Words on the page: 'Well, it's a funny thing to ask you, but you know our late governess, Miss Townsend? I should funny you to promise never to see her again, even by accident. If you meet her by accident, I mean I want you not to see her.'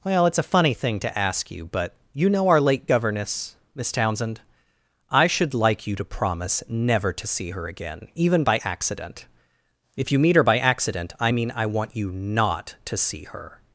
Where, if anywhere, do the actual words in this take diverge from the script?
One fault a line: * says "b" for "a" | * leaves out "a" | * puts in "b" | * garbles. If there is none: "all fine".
* says "like" for "funny"